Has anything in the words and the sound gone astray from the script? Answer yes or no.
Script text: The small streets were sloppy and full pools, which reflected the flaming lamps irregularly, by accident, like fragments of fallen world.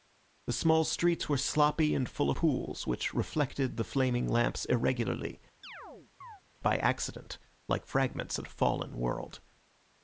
yes